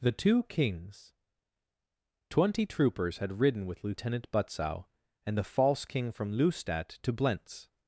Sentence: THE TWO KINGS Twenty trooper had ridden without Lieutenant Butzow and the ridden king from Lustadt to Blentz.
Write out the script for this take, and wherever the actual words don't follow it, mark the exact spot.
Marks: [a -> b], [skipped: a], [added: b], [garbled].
THE TWO KINGS Twenty [trooper -> troopers] had ridden [without -> with] Lieutenant Butzow and the [ridden -> false] king from Lustadt to Blentz.